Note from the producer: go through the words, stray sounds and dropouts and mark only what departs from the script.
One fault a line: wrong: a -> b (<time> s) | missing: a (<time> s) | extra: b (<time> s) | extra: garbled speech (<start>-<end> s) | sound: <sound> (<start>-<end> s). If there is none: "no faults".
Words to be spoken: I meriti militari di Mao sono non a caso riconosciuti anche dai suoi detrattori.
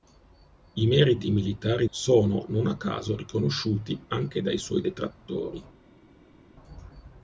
missing: di Mao (1.9 s)